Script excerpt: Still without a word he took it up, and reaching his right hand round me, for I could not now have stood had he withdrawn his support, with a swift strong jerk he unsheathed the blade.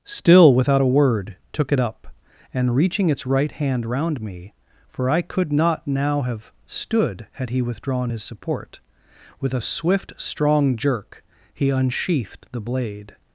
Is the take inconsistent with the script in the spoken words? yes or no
yes